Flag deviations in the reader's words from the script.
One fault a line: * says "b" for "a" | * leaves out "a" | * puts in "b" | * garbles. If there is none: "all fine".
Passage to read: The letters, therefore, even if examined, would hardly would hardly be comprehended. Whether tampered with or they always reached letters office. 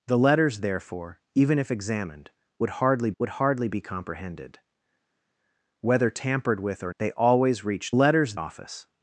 all fine